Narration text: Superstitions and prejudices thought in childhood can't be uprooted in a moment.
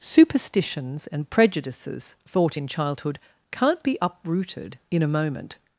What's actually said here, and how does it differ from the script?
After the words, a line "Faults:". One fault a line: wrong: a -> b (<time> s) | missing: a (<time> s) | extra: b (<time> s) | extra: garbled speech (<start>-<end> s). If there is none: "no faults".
Superstitions and prejudices thought in childhood can't be uprooted in a moment.
Faults:
no faults